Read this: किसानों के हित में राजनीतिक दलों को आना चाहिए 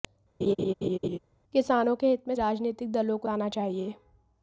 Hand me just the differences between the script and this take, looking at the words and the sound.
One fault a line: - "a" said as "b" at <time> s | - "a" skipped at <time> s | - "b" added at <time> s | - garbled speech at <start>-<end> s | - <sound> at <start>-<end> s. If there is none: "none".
- laugh at 0.4-1.2 s